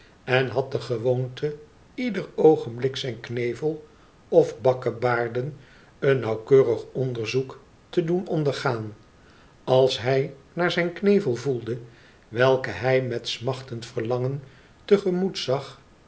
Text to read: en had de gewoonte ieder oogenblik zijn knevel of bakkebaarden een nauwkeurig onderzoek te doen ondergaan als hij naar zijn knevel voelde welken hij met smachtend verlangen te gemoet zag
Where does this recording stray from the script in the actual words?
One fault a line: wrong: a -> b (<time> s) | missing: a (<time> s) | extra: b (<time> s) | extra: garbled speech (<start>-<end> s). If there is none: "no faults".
no faults